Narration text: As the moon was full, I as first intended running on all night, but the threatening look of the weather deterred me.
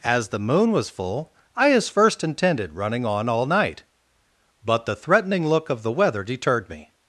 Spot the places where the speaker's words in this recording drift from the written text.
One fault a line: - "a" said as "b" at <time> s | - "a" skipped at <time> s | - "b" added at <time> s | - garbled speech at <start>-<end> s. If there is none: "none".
none